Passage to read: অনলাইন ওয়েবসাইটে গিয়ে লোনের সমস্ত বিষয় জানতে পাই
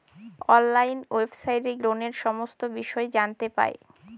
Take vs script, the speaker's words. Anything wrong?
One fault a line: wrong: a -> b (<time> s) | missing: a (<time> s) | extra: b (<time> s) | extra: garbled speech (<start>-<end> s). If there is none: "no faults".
missing: গিয়ে (1.7 s)